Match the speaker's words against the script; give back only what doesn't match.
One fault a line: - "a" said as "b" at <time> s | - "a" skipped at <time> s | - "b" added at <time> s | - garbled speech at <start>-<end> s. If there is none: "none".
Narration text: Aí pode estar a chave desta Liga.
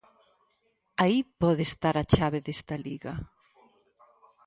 none